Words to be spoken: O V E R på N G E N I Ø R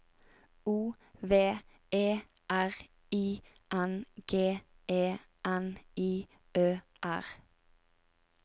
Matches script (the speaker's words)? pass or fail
fail